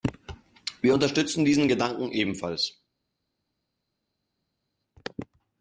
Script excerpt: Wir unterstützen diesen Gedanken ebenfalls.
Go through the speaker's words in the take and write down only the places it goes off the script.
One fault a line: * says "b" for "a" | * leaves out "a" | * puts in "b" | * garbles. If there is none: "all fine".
all fine